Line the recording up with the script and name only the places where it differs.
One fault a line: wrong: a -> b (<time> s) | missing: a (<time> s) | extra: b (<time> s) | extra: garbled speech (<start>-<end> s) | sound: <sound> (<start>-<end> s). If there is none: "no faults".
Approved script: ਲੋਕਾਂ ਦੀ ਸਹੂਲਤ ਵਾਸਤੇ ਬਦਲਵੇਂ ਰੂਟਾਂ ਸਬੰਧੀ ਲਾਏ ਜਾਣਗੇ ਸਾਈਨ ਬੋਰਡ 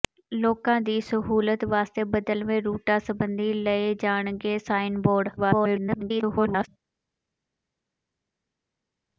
extra: garbled speech (5.4-6.7 s)